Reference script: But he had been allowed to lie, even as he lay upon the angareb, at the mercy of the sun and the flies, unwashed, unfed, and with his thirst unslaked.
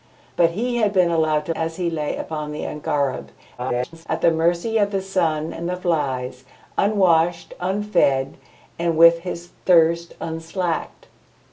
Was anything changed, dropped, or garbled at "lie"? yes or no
yes